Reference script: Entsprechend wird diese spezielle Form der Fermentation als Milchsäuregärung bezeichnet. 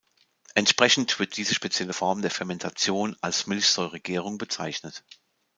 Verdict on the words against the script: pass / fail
pass